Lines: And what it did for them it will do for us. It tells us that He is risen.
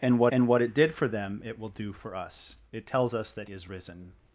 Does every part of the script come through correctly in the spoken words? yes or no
no